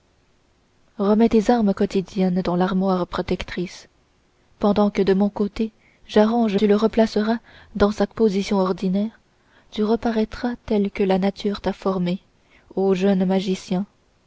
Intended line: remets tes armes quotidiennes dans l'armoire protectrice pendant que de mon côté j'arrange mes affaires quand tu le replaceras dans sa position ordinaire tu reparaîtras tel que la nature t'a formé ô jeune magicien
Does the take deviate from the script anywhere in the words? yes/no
yes